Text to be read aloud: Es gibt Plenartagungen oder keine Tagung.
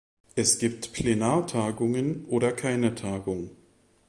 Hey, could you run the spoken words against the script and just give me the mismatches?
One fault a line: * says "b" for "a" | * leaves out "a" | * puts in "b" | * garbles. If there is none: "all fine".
all fine